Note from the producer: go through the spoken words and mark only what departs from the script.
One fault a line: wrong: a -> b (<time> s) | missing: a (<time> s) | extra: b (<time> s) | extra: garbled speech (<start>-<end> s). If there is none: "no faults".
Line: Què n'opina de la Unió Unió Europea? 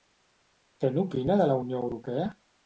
missing: Unió (1.8 s)